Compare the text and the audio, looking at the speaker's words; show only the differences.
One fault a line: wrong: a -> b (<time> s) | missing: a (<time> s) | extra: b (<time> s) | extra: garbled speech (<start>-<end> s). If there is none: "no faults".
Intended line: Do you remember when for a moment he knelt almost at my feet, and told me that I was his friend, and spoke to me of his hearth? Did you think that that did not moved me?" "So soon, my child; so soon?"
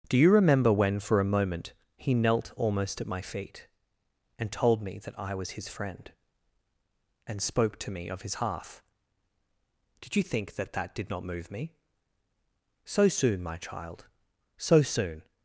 wrong: moved -> move (11.2 s)